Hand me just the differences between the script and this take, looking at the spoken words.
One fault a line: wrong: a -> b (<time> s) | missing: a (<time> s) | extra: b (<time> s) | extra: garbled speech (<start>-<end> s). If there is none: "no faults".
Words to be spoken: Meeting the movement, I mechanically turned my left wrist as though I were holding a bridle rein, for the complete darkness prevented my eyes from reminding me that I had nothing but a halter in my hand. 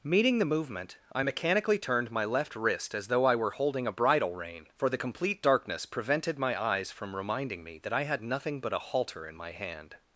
no faults